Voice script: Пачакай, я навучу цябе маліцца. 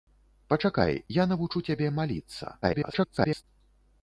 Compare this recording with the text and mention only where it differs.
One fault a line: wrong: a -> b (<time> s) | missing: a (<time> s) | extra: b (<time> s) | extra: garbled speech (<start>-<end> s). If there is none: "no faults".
extra: garbled speech (2.6-3.4 s)